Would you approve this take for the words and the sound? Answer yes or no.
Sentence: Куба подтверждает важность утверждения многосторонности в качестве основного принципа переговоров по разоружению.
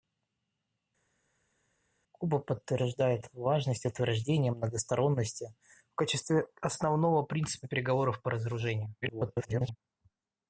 no